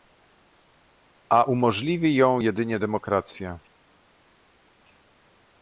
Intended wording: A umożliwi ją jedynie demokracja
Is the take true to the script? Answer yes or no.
yes